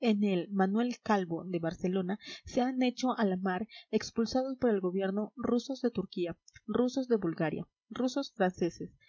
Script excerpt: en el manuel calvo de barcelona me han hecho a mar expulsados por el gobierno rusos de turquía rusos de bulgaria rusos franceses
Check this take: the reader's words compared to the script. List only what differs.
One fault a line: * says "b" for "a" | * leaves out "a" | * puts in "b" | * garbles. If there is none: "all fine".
* says "se" for "me"
* puts in "la"